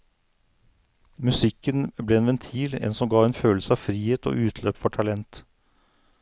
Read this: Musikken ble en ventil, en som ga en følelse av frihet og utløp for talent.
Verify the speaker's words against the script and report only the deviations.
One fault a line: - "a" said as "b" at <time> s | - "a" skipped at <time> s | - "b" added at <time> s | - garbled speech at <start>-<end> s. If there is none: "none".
none